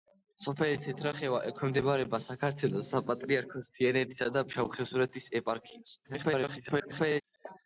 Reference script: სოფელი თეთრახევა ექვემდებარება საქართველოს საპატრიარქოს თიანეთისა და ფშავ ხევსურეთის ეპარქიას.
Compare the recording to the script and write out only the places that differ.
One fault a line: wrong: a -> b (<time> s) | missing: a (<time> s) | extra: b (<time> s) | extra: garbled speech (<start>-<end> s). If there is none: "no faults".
extra: garbled speech (6.0-7.2 s)